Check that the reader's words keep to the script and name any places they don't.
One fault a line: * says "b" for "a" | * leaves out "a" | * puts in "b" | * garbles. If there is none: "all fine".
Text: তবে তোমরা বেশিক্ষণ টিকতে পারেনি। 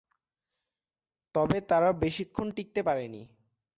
* says "তারা" for "তোমরা"